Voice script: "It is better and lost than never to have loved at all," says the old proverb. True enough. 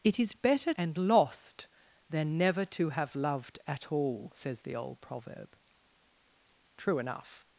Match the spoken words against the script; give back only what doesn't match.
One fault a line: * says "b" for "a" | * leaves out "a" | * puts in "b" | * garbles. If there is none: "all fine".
all fine